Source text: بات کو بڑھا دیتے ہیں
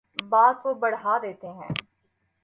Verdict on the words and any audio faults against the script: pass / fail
pass